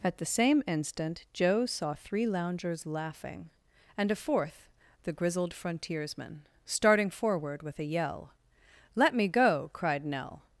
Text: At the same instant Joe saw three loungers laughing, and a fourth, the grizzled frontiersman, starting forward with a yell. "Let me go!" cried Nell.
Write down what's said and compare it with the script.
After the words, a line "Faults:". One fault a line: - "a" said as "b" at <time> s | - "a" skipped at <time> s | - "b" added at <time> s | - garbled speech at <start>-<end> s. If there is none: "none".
At the same instant Joe saw three loungers laughing, and a fourth, the grizzled frontiersman, starting forward with a yell. "Let me go!" cried Nell.
Faults:
none